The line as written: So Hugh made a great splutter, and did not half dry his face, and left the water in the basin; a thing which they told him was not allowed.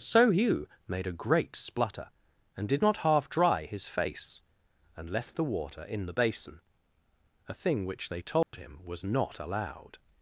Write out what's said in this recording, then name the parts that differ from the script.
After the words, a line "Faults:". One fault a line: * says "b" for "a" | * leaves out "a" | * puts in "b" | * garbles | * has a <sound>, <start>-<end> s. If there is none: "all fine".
So Hugh made a great splutter, and did not half dry his face, and left the water in the basin; a thing which they told him was not allowed.
Faults:
* has a dropout, 8.4-8.5 s